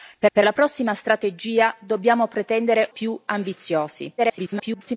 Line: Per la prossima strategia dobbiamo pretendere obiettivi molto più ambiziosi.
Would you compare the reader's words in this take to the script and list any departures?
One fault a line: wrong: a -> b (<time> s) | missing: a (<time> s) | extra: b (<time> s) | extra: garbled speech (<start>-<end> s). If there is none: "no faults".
extra: per (0.3 s)
missing: obiettivi molto (2.9 s)
extra: garbled speech (4.2-5.0 s)